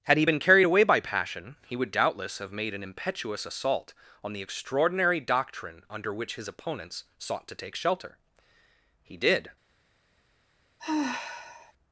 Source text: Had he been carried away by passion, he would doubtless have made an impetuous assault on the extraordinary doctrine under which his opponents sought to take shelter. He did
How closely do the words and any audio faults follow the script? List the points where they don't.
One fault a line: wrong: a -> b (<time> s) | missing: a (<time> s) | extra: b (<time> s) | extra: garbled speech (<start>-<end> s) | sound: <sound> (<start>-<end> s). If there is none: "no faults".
sound: sigh (10.8-11.7 s)